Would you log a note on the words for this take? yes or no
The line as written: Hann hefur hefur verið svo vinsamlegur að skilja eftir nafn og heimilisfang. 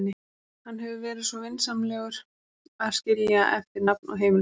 yes